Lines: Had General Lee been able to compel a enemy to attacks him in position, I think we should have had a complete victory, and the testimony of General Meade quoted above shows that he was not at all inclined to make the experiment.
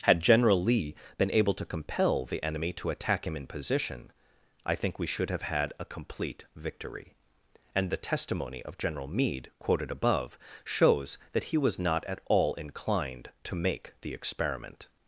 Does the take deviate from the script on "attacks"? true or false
true